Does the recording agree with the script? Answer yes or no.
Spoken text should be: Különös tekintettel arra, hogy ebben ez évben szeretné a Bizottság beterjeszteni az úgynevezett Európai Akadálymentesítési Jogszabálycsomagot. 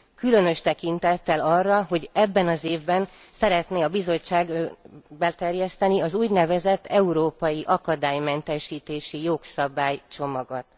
no